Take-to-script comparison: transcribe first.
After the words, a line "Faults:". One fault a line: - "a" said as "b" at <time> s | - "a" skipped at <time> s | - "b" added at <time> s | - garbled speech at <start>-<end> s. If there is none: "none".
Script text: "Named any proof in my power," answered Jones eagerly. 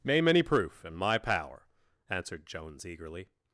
"Name any proof in my power," answered Jones eagerly.
Faults:
- "Named" said as "Name" at 0.0 s